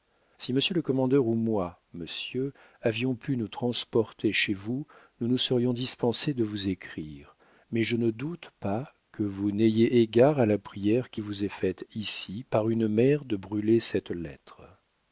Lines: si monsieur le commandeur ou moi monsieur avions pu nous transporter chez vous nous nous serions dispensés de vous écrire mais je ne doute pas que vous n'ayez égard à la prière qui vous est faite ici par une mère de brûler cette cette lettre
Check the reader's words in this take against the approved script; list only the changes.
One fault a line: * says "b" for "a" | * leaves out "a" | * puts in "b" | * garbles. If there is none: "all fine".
* leaves out "cette"